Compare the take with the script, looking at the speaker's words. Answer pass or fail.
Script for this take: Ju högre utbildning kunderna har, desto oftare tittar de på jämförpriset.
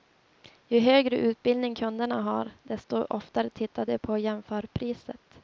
pass